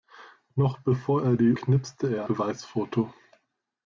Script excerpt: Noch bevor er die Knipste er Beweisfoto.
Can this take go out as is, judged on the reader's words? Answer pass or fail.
pass